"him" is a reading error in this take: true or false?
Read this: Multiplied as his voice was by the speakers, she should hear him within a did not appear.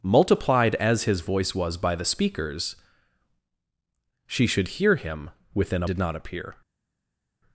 false